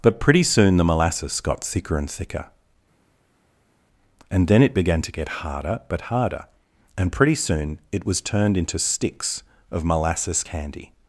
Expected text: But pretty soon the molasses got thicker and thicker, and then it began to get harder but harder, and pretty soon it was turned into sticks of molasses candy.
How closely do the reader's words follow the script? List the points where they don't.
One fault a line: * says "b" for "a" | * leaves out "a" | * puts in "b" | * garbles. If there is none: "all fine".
all fine